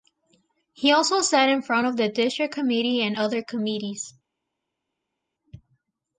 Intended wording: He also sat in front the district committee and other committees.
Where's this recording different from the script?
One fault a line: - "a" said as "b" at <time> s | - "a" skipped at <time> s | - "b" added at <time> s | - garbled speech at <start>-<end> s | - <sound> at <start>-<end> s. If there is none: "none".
- "of" added at 1.8 s